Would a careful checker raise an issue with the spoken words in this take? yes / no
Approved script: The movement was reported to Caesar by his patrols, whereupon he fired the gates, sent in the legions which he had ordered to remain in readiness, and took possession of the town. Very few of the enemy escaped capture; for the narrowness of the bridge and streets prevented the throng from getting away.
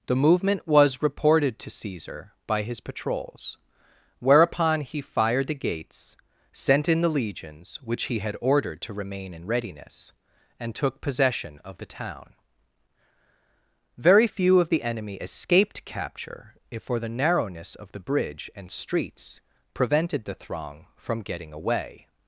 yes